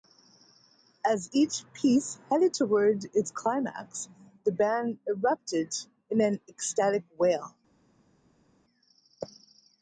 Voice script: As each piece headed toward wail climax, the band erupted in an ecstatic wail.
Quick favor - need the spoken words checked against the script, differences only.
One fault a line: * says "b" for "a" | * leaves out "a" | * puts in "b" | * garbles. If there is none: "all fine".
* says "its" for "wail"